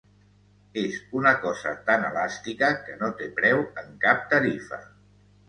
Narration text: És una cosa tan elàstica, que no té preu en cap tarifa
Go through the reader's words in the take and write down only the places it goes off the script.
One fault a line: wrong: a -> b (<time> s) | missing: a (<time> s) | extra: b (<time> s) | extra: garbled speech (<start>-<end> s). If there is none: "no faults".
no faults